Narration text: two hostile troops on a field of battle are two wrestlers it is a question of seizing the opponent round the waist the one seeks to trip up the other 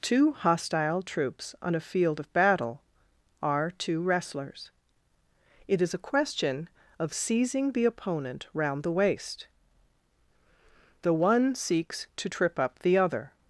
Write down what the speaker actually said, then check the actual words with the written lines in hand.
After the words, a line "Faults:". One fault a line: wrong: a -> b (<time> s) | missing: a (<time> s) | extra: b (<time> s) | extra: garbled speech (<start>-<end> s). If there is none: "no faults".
two hostile troops on a field of battle are two wrestlers it is a question of seizing the opponent round the waist the one seeks to trip up the other
Faults:
no faults